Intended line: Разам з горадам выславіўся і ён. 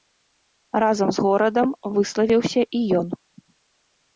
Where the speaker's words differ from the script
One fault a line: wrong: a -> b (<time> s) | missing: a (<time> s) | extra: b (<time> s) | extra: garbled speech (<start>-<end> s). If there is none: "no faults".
no faults